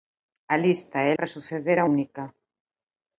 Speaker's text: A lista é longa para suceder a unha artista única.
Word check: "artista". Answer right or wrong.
wrong